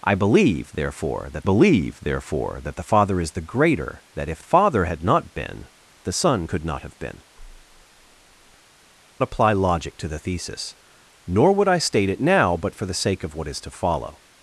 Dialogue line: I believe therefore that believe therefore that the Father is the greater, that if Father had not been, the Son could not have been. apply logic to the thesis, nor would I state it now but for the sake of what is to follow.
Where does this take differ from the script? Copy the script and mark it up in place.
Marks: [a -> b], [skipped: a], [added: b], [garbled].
I believe therefore that believe therefore that the Father is the greater, that if Father had not been, the Son could not have been. apply logic to the thesis, nor would I state it now but for the sake of what is to follow.